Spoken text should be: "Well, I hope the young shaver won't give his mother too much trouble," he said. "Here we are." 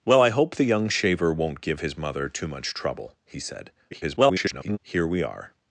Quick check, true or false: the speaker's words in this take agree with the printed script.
false